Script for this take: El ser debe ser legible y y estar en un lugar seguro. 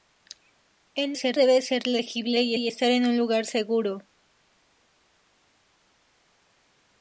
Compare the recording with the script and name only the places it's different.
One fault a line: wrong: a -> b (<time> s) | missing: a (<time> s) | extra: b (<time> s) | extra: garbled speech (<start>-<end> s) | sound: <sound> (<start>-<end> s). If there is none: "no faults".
no faults